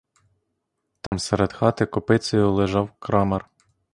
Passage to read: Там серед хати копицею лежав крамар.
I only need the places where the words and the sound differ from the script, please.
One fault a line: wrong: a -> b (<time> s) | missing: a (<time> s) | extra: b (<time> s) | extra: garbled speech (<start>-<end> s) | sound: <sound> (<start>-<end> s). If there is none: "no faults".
sound: dropout (1.1-1.1 s)